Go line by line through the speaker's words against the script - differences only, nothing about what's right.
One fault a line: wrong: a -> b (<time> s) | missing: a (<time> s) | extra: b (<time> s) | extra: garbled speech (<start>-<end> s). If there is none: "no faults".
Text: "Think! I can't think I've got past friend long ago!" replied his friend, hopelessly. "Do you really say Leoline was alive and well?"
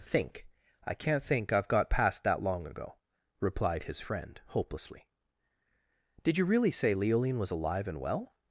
wrong: friend -> that (2.2 s)
wrong: Do -> Did (6.2 s)